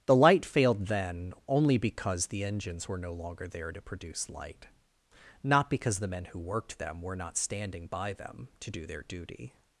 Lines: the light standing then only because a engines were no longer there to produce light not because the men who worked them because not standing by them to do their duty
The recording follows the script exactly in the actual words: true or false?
false